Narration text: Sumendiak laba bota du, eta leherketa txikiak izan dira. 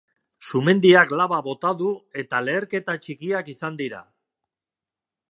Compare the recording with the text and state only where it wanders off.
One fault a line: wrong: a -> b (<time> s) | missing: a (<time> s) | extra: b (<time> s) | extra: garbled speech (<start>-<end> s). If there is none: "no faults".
no faults